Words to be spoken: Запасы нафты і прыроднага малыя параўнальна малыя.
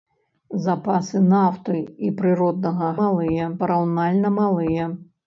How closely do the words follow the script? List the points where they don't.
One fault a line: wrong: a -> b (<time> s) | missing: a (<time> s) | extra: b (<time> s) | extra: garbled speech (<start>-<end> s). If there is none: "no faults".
no faults